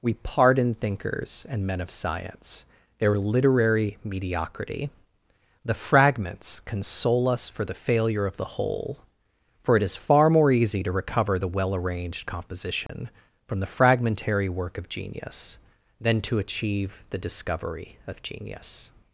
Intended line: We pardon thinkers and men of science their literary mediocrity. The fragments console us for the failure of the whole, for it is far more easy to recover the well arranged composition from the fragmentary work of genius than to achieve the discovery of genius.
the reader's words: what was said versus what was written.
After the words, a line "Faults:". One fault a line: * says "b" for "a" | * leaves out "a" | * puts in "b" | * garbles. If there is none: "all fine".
We pardon thinkers and men of science their literary mediocrity. The fragments console us for the failure of the whole, for it is far more easy to recover the well arranged composition from the fragmentary work of genius than to achieve the discovery of genius.
Faults:
all fine